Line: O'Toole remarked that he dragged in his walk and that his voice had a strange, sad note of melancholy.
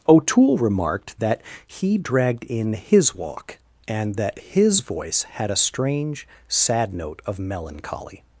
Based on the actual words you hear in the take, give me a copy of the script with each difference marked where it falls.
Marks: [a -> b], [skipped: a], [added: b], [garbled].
O'Toole remarked that he dragged in his walk and that his voice had a strange, sad note of melancholy.